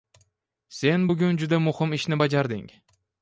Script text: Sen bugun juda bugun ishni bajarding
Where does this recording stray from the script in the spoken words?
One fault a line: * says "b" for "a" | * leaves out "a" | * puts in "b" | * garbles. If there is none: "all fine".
* says "muhim" for "bugun"